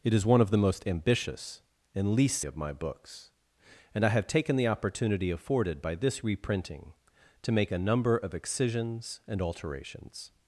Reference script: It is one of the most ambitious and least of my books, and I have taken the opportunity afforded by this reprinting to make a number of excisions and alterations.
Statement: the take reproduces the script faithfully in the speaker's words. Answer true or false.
true